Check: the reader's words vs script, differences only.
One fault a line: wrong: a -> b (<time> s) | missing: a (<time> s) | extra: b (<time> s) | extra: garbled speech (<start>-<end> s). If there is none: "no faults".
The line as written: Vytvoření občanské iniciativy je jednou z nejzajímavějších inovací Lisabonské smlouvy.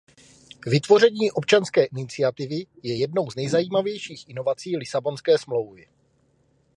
no faults